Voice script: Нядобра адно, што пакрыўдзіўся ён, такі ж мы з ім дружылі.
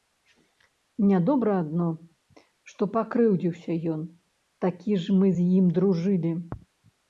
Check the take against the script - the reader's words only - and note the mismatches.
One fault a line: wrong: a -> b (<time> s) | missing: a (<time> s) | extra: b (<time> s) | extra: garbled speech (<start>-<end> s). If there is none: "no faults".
no faults